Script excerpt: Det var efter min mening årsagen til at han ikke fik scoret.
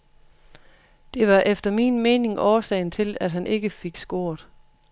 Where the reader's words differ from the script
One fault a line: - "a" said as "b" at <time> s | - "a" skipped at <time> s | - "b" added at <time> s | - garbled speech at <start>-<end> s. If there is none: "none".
none